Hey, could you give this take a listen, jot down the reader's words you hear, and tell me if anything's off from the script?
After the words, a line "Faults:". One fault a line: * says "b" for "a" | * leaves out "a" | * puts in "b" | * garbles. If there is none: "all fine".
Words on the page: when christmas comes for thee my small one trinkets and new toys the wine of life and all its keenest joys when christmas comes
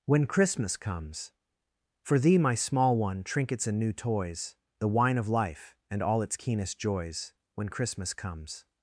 when christmas comes for thee my small one trinkets and new toys the wine of life and all its keenest joys when christmas comes
Faults:
all fine